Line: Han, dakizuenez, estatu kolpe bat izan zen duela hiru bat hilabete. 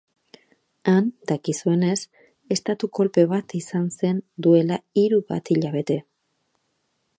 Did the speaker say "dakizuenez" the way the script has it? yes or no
yes